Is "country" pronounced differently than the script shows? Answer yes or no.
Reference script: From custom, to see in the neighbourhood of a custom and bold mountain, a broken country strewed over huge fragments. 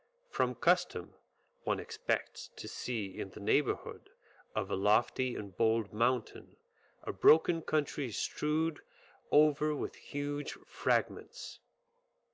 no